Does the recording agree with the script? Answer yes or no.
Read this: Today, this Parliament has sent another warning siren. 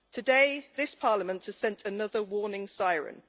yes